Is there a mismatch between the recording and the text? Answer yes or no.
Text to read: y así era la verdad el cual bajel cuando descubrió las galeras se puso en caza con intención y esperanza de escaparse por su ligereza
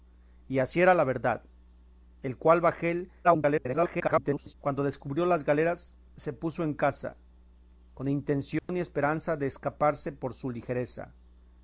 yes